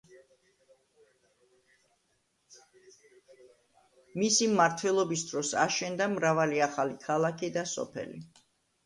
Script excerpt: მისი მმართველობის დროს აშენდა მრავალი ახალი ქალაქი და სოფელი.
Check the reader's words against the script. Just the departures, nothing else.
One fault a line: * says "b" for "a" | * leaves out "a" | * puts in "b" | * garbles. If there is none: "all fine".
all fine